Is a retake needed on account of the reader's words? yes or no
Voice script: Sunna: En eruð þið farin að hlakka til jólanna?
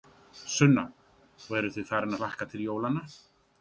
yes